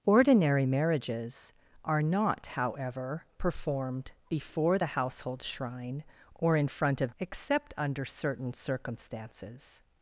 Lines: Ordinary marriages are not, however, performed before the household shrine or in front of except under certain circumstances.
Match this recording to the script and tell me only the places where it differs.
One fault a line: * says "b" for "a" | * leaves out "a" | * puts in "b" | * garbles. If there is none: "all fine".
all fine